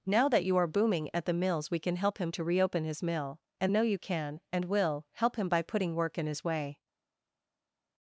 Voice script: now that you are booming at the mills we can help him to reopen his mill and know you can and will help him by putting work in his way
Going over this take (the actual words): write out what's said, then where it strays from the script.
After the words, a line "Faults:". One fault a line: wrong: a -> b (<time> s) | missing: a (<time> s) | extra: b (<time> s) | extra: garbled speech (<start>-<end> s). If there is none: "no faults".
now that you are booming at the mills we can help him to reopen his mill and know you can and will help him by putting work in his way
Faults:
no faults